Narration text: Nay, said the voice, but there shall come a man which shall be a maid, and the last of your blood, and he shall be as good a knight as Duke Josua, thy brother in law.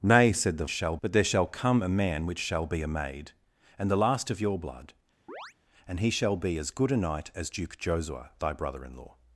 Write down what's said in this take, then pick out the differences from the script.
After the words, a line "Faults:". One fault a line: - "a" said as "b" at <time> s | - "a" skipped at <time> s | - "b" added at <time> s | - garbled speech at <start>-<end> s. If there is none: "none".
Nay, said the shall, but there shall come a man which shall be a maid, and the last of your blood, and he shall be as good a knight as Duke Josua, thy brother in law.
Faults:
- "voice" said as "shall" at 0.7 s